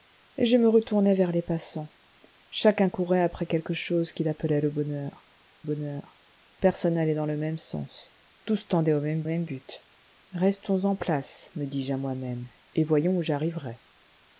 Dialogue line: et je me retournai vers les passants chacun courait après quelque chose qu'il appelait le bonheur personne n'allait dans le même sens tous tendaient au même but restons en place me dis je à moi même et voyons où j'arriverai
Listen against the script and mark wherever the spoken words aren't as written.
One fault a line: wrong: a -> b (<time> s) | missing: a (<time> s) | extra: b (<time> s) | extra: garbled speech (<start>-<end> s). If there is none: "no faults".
extra: bonheur (5.6 s)
extra: même (9.2 s)